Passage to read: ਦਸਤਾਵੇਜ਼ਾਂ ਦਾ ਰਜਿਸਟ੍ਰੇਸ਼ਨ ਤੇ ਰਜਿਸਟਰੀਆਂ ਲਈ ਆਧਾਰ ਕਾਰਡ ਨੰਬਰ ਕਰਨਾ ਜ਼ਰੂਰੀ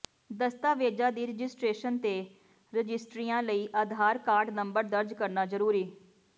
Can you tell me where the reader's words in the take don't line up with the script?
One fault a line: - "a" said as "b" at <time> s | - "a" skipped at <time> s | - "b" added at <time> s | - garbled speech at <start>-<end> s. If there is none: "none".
- "ਦਾ" said as "ਦੀ" at 1.1 s
- "ਦਰਜ" added at 4.8 s